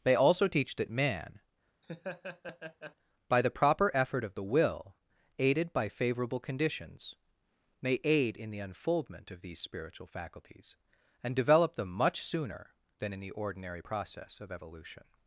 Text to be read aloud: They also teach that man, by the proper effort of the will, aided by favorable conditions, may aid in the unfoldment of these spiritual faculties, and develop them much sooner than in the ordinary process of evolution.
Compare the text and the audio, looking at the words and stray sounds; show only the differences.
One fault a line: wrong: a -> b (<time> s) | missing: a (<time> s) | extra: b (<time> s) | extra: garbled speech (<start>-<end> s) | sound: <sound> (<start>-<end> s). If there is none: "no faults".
sound: laugh (1.8-3.0 s)